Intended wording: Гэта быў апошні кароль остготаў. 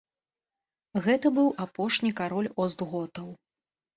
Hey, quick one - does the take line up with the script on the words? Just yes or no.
yes